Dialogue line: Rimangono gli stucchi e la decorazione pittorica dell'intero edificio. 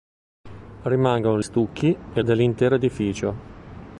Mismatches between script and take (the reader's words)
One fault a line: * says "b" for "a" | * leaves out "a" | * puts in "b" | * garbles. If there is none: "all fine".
* leaves out "gli"
* leaves out "la decorazione pittorica"